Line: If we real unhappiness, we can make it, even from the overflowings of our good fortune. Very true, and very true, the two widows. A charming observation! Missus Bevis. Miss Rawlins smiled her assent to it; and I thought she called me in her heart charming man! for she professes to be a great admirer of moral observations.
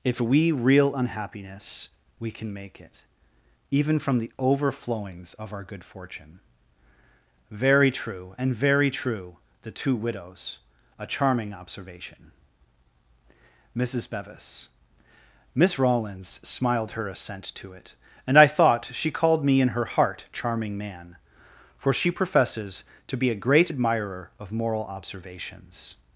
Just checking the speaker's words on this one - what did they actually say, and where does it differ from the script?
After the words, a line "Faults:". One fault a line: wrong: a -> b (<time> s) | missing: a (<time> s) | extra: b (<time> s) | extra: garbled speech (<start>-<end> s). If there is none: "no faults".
If we real unhappiness, we can make it, even from the overflowings of our good fortune. Very true, and very true, the two widows. A charming observation! Missus Bevis. Miss Rawlins smiled her assent to it; and I thought she called me in her heart charming man! for she professes to be a great admirer of moral observations.
Faults:
no faults